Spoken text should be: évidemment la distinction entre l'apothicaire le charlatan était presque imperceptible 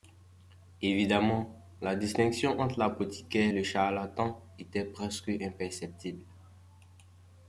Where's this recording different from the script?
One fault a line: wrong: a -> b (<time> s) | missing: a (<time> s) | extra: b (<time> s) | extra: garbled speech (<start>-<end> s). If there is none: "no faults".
no faults